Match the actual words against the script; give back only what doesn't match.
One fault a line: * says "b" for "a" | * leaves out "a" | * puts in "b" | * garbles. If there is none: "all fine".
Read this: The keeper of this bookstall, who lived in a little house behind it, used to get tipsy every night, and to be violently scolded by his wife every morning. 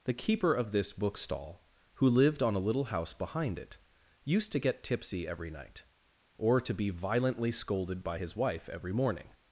* says "on" for "in"
* says "or" for "and"